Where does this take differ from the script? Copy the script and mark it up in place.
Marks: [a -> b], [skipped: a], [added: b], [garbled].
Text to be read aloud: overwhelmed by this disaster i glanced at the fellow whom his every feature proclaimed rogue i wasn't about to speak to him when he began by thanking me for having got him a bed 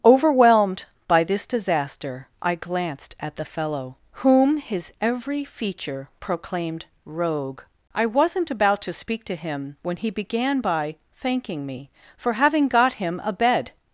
overwhelmed by this disaster i glanced at the fellow whom his every feature proclaimed rogue i wasn't about to speak to him when he began by thanking me for having got him a bed